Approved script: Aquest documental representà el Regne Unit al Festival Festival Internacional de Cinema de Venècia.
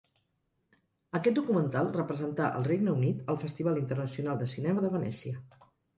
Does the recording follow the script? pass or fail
fail